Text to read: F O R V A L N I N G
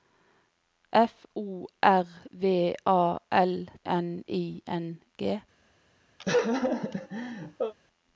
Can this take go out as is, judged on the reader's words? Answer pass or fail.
pass